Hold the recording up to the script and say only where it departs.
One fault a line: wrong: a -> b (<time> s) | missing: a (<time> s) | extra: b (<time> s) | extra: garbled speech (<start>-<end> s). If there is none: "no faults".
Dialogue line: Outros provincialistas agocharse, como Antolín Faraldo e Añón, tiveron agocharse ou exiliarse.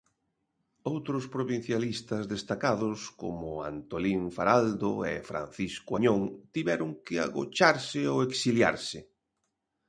wrong: agocharse -> destacados (2.3 s)
extra: Francisco (5.3 s)
extra: que (7.0 s)